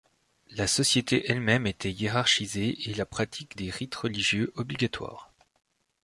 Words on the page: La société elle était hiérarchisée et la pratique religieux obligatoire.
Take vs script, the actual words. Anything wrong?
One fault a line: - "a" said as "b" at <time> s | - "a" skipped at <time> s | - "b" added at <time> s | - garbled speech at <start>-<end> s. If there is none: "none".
- "même" added at 1.4 s
- "des rites" added at 3.6 s